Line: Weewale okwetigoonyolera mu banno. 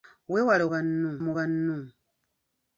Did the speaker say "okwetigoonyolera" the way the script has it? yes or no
no